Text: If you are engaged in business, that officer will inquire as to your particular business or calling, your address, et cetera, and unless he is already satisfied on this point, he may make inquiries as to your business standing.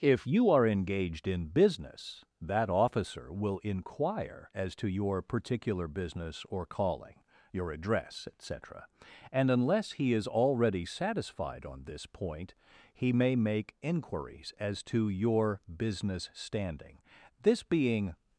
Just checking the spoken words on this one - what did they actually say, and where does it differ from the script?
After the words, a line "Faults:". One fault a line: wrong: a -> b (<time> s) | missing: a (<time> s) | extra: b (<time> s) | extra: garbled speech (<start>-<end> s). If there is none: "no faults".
If you are engaged in business, that officer will inquire as to your particular business or calling, your address, et cetera, and unless he is already satisfied on this point, he may make inquiries as to your business standing. This being
Faults:
extra: This being (17.4 s)